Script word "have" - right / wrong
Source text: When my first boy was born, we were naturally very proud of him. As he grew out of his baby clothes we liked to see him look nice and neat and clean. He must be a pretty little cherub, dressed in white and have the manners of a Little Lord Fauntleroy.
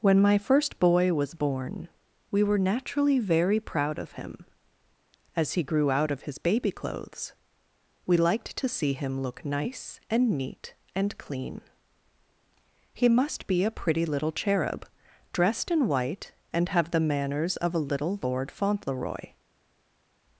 right